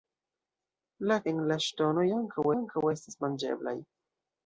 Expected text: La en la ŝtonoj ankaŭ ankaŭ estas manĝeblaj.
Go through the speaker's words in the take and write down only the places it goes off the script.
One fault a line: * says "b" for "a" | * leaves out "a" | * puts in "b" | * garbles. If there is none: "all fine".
all fine